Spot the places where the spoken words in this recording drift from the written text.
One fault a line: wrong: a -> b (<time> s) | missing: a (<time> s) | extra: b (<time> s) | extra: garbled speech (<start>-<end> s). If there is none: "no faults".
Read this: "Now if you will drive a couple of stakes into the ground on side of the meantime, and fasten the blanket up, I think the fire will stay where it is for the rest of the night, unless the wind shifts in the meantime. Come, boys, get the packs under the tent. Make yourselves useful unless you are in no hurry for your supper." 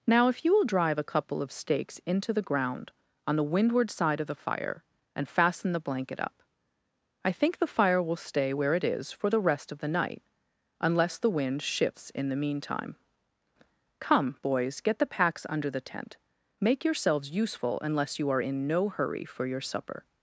extra: the windward (3.4 s)
wrong: meantime -> fire (4.3 s)